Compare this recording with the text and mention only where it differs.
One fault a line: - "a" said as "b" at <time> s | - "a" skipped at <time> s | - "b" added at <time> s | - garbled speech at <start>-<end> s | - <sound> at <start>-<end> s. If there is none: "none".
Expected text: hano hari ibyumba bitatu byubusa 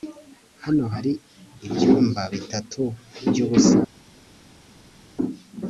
none